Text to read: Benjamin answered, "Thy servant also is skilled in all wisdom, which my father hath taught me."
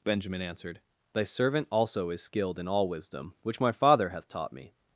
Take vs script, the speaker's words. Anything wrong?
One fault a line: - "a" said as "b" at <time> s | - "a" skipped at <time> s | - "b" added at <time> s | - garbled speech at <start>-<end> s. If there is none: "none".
none